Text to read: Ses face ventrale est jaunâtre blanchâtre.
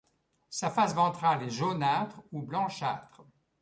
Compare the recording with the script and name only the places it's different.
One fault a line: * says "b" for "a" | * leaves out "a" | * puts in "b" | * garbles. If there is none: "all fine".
* says "Sa" for "Ses"
* puts in "ou"